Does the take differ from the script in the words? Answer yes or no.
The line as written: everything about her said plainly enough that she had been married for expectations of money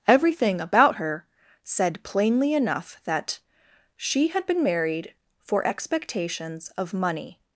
no